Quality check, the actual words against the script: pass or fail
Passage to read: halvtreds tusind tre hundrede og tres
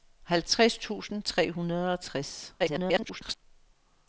fail